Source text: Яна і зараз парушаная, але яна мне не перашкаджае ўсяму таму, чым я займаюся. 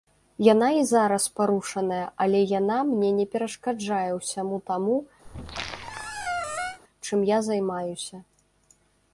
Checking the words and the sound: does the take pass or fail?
fail